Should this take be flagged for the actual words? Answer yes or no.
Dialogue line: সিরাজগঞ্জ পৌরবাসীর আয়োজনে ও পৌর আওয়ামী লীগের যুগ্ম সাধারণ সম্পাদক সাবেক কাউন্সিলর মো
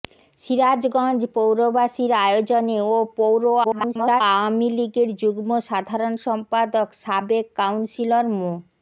yes